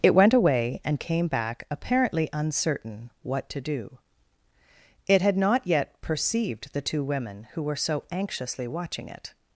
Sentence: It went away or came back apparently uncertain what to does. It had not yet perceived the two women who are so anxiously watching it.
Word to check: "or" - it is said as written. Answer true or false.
false